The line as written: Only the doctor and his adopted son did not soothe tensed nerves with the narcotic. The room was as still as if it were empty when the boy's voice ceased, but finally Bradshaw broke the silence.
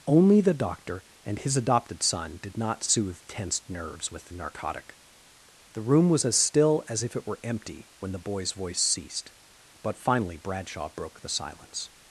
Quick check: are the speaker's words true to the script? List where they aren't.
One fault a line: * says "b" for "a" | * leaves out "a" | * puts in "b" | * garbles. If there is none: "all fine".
all fine